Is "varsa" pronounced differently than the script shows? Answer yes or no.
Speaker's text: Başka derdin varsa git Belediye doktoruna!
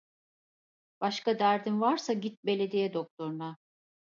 no